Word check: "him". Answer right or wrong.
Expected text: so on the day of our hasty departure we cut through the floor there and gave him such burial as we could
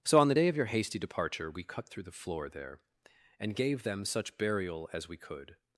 wrong